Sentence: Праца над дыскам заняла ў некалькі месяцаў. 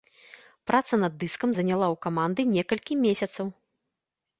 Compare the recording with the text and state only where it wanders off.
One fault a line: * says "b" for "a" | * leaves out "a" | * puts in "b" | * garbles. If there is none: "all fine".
* puts in "каманды"